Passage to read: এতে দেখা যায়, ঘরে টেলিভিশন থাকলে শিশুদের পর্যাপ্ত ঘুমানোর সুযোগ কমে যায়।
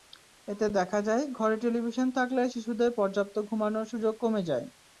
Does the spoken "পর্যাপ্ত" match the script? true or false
true